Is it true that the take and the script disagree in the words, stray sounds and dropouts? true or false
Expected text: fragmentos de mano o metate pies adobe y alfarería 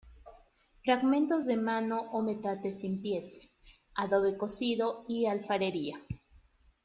true